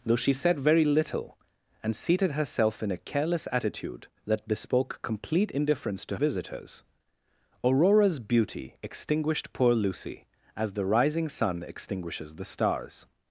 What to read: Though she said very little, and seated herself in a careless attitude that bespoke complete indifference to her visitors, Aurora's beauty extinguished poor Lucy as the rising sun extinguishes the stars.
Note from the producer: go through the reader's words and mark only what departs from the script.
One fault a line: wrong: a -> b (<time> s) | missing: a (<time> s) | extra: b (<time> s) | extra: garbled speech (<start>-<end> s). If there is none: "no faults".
missing: her (6.2 s)